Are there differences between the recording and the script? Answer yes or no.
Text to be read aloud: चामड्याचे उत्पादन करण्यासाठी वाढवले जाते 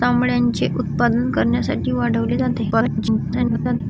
yes